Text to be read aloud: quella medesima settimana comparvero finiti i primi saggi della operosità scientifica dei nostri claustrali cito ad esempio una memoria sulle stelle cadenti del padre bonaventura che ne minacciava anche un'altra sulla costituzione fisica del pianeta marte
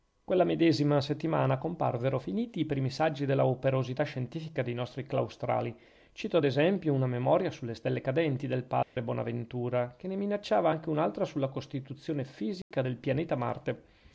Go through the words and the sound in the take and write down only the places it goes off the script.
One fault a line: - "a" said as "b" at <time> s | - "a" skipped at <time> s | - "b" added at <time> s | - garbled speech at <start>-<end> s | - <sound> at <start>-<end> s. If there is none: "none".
- dropout at 8.8-9.0 s
- dropout at 12.6-12.7 s